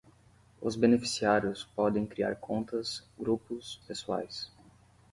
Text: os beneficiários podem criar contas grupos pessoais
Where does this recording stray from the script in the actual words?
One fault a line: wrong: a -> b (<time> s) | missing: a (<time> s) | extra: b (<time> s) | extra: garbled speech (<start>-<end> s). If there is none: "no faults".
no faults